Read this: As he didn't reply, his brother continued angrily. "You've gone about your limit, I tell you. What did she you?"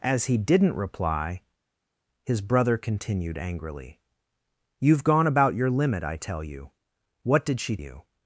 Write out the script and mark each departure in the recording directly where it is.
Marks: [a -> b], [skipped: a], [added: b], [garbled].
As he didn't reply, his brother continued angrily. "You've gone about your limit, I tell you. What did she you?"